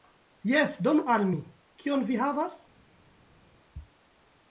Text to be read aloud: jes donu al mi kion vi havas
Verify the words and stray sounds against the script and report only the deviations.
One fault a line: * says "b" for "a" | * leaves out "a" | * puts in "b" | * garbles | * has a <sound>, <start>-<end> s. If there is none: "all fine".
all fine